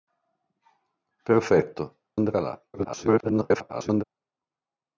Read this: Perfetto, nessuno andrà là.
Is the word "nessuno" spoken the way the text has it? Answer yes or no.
no